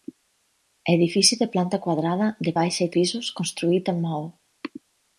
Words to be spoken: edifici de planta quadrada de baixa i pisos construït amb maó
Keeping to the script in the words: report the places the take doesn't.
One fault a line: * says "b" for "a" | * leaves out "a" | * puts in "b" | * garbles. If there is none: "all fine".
all fine